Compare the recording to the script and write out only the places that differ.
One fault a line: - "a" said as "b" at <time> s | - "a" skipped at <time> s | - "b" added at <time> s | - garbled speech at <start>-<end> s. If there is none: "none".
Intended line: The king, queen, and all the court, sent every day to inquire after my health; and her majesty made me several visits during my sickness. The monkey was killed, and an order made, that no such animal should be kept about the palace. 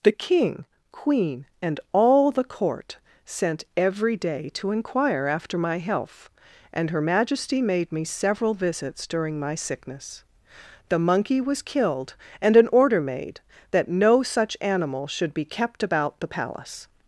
none